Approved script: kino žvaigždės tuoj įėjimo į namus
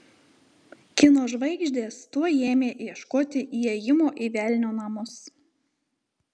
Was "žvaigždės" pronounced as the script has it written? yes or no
yes